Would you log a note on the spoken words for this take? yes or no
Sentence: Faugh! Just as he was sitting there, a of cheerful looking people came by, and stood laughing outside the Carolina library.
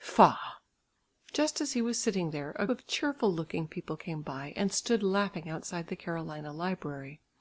no